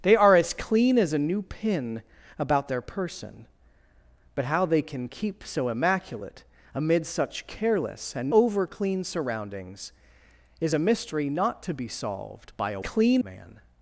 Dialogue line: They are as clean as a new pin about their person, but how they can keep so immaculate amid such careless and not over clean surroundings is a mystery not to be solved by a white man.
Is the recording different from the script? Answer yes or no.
yes